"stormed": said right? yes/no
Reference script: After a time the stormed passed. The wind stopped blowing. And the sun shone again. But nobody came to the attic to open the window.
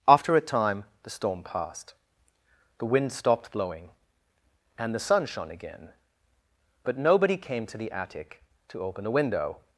no